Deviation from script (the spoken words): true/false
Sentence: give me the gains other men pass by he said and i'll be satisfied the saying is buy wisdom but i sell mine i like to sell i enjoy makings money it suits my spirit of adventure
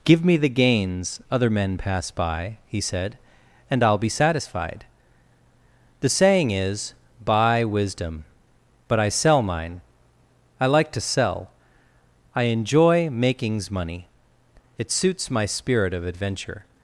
false